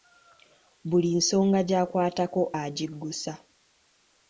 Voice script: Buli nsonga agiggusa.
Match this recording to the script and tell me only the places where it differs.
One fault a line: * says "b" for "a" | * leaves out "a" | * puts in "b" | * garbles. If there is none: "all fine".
* puts in "gy'akwatako"